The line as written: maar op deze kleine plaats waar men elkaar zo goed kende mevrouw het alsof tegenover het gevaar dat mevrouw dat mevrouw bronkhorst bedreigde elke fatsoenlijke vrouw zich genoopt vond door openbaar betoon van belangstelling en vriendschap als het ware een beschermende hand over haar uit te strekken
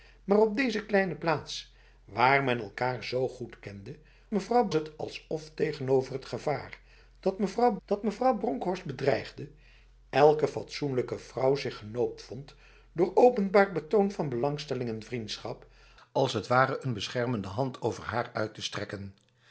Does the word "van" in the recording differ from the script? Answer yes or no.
no